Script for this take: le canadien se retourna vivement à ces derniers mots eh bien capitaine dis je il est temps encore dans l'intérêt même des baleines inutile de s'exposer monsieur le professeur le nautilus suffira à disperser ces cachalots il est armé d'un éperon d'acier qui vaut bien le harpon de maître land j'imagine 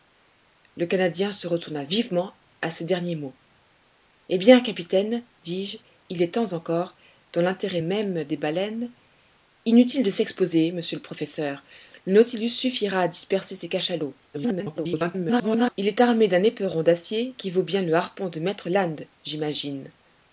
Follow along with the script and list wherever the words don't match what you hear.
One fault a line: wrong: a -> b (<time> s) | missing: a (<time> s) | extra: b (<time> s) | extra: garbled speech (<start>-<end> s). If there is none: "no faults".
extra: garbled speech (14.3-15.8 s)